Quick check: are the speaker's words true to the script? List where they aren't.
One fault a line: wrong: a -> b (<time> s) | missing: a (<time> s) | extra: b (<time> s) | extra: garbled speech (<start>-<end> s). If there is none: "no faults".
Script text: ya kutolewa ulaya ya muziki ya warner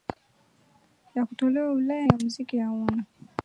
no faults